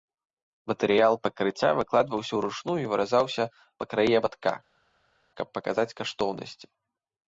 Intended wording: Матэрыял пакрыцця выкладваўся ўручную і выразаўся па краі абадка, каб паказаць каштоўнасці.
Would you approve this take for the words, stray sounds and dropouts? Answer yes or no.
yes